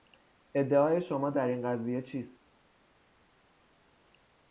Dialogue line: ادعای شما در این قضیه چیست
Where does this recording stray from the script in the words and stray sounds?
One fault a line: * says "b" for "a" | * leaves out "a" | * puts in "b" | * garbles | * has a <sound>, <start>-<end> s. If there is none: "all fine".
all fine